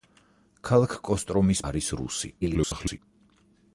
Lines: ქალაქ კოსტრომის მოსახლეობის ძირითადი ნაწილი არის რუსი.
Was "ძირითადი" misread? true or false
true